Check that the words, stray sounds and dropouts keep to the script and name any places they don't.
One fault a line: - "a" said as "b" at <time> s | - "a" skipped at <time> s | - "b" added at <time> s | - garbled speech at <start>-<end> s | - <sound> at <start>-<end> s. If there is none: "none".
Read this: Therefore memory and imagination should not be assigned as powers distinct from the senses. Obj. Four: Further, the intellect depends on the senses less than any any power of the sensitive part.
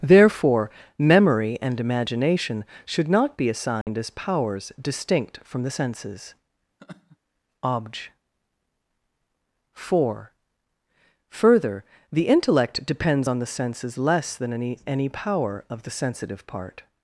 - dropout at 3.8-3.9 s
- laugh at 6.8-7.2 s